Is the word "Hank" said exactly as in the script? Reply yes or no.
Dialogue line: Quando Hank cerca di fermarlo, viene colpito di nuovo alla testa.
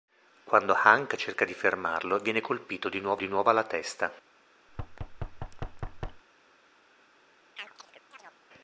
yes